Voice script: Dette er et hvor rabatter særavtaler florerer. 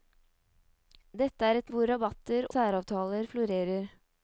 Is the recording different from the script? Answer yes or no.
no